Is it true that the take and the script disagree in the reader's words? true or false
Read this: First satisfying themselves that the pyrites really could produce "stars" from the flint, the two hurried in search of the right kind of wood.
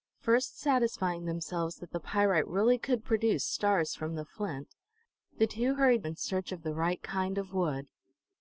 false